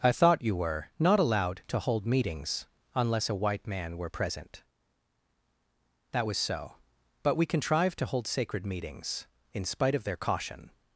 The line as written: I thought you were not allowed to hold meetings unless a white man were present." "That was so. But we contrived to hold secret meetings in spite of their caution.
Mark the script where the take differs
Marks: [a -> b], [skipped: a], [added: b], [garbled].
I thought you were not allowed to hold meetings unless a white man were present." "That was so. But we contrived to hold [secret -> sacred] meetings in spite of their caution.